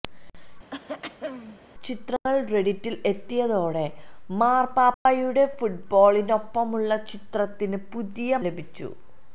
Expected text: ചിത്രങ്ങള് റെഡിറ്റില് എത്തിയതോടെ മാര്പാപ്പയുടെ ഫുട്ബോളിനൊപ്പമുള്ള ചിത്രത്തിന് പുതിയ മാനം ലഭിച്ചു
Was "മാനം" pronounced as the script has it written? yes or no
no